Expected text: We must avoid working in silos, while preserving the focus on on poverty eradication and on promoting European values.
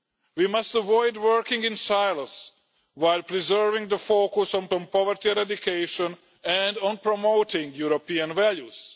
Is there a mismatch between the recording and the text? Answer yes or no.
no